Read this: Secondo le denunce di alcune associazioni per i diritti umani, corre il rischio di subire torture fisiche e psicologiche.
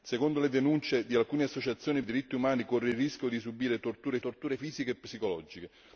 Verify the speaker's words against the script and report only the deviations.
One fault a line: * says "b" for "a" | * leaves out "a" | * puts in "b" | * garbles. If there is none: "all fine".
* leaves out "per"
* puts in "torture"